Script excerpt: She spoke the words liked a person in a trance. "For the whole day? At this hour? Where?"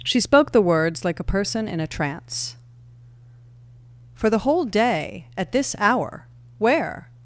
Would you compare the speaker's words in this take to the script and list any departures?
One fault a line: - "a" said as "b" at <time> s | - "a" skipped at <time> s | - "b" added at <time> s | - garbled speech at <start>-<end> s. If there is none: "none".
- "liked" said as "like" at 1.1 s